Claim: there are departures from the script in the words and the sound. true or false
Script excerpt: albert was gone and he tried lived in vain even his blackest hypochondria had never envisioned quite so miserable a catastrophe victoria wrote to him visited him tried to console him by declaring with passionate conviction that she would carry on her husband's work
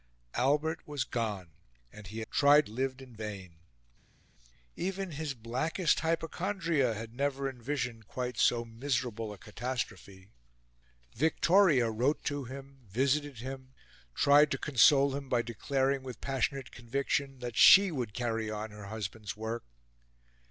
false